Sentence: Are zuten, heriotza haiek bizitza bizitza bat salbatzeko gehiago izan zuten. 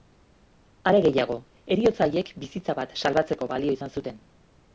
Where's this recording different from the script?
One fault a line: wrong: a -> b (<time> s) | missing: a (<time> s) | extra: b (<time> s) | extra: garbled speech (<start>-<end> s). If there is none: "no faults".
wrong: zuten -> gehiago (1.1 s)
missing: bizitza (2.8 s)
wrong: gehiago -> balio (3.5 s)